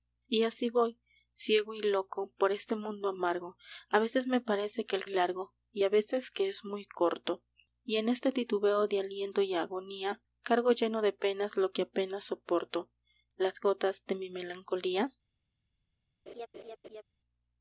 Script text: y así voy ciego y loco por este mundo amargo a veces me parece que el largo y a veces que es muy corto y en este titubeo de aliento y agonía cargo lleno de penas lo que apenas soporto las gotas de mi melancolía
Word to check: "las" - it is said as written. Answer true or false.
true